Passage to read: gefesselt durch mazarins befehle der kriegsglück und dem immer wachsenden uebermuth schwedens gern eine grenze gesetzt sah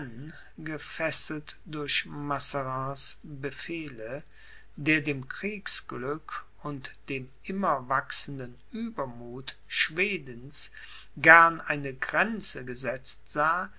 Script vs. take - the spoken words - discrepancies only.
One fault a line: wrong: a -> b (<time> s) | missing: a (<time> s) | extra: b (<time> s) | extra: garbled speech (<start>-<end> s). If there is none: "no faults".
extra: dem (5.0 s)